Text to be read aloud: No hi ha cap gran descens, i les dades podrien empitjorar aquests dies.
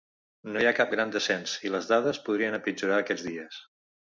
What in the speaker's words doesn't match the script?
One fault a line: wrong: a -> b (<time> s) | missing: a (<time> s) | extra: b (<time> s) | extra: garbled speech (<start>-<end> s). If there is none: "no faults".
no faults